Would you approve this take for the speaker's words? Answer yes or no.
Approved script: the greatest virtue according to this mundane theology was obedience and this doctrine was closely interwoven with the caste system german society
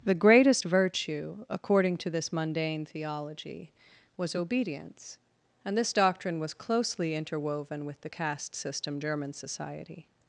yes